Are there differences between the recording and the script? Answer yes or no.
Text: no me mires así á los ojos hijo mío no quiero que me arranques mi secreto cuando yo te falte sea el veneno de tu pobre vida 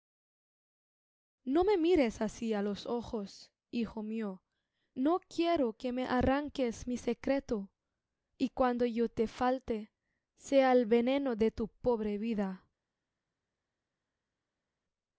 yes